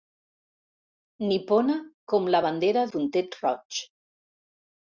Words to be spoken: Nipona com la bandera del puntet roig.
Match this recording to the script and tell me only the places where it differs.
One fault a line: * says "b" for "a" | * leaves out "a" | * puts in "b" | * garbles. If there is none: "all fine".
* leaves out "del"